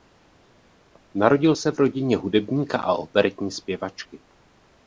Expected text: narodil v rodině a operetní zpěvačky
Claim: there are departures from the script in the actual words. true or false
true